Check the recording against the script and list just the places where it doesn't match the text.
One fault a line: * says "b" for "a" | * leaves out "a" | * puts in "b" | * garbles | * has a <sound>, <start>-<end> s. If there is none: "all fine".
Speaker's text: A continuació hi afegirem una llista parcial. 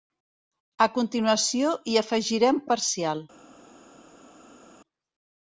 * leaves out "una llista"